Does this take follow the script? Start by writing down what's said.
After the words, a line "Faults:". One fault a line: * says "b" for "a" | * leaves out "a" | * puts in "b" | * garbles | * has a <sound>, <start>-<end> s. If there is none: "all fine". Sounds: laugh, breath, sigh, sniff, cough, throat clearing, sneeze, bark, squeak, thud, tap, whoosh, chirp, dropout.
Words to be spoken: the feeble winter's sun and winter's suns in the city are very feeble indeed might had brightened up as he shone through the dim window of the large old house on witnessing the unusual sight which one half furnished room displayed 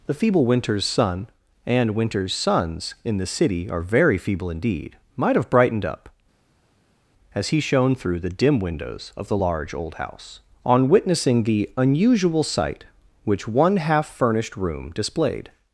the feeble winter's sun and winter's suns in the city are very feeble indeed might have brightened up as he shone through the dim windows of the large old house on witnessing the unusual sight which one half furnished room displayed
Faults:
* says "have" for "had"
* says "windows" for "window"